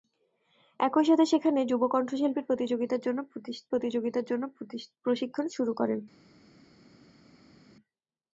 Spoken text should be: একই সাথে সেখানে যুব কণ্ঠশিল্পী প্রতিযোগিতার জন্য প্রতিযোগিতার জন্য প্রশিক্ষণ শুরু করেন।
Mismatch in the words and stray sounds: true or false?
false